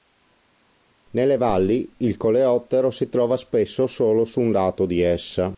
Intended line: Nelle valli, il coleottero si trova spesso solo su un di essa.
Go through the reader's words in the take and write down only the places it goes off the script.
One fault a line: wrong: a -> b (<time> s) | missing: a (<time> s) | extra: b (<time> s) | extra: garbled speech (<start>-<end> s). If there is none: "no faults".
extra: lato (4.5 s)